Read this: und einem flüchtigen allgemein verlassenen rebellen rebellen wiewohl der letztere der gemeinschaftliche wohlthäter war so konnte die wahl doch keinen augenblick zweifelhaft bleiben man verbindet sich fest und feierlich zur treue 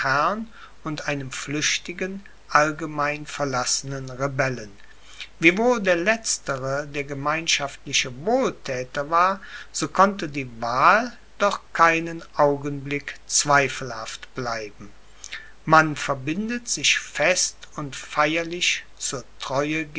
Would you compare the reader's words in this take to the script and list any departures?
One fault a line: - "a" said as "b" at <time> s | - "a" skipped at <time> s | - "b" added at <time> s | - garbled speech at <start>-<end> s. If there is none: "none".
- "rebellen" skipped at 4.8 s